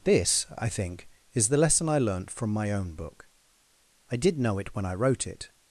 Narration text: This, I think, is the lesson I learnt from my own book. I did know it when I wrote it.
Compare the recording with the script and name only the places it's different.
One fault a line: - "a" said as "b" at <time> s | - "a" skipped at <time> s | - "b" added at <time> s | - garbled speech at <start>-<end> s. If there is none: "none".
none